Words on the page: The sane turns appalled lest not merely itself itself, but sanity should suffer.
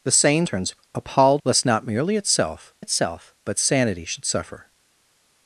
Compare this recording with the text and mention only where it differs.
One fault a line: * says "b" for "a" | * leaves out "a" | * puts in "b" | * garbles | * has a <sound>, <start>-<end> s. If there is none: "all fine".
all fine